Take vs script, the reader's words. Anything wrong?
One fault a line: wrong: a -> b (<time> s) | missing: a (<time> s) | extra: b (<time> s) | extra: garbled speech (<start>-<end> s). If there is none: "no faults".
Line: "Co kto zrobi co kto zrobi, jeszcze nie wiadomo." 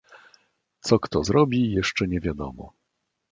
missing: co kto zrobi (1.7 s)